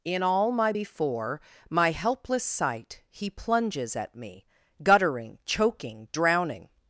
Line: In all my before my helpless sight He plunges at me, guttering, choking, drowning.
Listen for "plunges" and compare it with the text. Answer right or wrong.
right